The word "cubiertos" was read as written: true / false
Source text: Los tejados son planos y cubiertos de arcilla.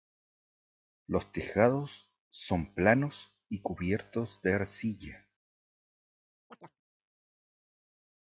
true